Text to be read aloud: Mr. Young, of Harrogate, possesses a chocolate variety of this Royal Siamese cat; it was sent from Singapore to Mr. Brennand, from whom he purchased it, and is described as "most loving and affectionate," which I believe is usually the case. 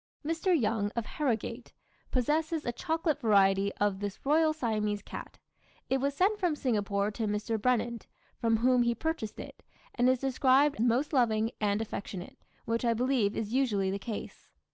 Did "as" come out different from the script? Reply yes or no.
yes